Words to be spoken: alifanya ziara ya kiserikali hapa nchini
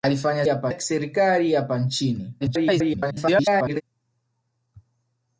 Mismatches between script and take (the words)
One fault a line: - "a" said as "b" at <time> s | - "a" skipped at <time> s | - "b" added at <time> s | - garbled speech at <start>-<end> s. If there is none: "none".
- "ziara" said as "hapa" at 0.5 s
- garbled speech at 2.4-3.8 s